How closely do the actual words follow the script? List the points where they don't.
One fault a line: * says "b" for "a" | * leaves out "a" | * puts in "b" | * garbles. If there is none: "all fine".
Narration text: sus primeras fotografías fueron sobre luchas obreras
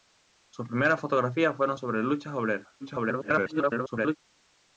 * garbles